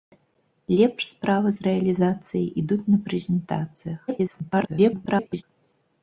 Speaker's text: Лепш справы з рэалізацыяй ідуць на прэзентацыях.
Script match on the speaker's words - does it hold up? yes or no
no